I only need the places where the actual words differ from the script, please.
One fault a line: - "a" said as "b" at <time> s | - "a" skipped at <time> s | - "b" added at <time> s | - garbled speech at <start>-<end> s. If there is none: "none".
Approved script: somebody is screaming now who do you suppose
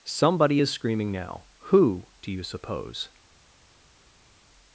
none